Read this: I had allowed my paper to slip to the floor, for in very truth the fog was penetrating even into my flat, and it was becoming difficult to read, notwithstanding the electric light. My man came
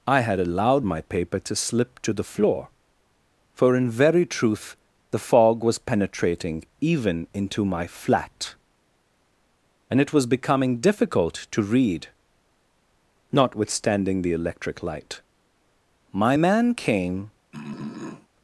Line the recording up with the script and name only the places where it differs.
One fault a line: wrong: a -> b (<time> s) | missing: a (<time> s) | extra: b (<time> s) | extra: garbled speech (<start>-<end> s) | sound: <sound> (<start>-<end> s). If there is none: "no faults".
sound: throat clearing (17.5-18.3 s)